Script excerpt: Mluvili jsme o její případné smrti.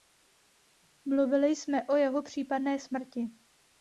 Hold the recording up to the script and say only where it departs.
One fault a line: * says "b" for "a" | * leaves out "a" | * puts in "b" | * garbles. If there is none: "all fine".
* says "jeho" for "její"